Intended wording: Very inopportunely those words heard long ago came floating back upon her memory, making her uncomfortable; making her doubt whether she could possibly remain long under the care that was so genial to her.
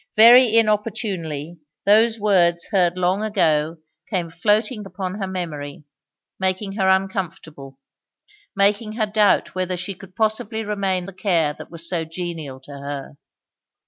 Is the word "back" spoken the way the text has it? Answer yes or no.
no